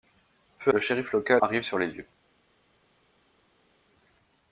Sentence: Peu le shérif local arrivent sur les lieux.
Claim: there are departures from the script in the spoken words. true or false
false